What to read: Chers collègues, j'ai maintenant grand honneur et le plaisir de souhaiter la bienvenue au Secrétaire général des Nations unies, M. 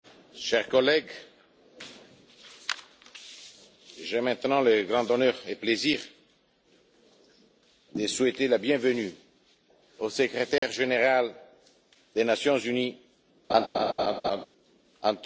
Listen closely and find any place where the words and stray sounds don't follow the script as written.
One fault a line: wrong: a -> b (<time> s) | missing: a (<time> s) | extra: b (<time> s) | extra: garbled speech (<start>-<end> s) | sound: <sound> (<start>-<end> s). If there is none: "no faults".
extra: le (4.6 s)
sound: dropout (10.6-10.6 s)
sound: laugh (13.5-14.5 s)